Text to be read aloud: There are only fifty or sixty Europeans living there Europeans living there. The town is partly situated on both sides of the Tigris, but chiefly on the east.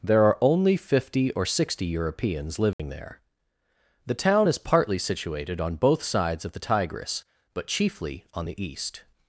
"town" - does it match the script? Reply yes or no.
yes